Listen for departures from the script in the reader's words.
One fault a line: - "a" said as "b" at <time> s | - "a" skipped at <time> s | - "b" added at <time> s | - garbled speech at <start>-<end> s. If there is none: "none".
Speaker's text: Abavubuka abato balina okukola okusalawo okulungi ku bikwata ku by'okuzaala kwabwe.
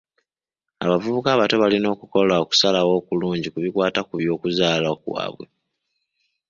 none